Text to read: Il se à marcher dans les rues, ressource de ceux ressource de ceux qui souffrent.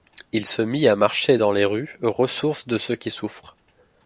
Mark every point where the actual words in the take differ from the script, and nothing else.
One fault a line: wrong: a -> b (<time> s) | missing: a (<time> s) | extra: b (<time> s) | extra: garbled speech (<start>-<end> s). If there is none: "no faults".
extra: mit (0.6 s)
missing: ressource de ceux (3.0 s)